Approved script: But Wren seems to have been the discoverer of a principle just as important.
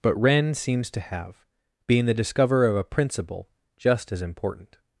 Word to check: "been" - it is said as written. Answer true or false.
false